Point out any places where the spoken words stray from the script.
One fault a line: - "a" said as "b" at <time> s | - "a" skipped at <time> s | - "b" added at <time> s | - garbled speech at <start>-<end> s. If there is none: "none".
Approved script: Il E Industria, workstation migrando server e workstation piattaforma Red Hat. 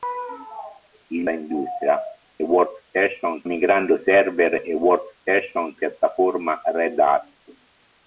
none